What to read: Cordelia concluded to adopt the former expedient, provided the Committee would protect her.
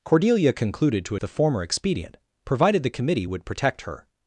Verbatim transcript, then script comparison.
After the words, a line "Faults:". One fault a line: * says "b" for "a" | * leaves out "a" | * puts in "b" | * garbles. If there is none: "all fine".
Cordelia concluded to the former expedient, provided the Committee would protect her.
Faults:
* leaves out "adopt"